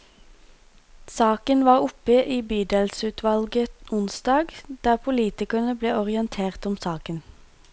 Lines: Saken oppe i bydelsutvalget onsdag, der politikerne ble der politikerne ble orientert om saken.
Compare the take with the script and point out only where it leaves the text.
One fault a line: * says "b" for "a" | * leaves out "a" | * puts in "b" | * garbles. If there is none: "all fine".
* puts in "var"
* leaves out "der politikerne ble"